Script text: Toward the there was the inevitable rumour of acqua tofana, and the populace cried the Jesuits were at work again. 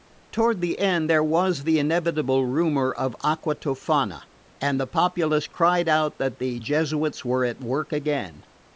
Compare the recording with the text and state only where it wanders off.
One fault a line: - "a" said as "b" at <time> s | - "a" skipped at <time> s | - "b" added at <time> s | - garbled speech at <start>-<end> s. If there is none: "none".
- "end" added at 0.8 s
- "out that" added at 5.9 s